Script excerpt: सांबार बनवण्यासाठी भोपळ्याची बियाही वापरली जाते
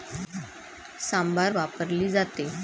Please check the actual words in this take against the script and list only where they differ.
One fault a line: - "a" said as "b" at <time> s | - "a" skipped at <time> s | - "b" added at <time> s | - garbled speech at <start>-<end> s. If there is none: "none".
- "बनवण्यासाठी भोपळ्याची बियाही" skipped at 1.5 s